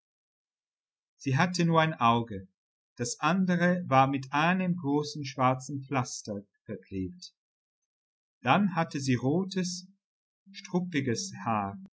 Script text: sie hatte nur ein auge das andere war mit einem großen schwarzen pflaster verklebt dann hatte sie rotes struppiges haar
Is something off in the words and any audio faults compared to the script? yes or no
no